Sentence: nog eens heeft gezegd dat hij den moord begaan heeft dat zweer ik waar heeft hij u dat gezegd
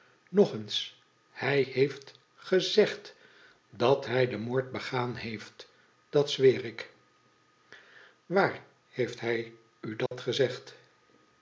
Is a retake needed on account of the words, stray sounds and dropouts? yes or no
yes